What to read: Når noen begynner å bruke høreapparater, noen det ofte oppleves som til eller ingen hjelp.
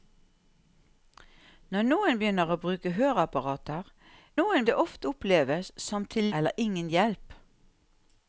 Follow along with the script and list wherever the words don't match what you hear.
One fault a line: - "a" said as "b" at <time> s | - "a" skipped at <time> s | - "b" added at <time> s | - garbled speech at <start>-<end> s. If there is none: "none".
none